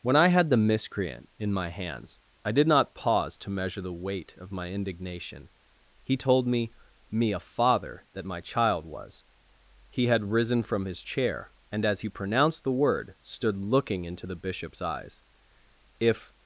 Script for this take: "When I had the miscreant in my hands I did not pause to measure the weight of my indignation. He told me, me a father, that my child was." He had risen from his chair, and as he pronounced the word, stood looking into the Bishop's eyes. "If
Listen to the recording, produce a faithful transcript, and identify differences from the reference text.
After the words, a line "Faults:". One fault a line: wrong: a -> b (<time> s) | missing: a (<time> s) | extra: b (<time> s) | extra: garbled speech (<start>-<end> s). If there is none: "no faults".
"When I had the miscreant in my hands I did not pause to measure the weight of my indignation. He told me, me a father, that my child was." He had risen from his chair, and as he pronounced the word, stood looking into the Bishop's eyes. "If
Faults:
no faults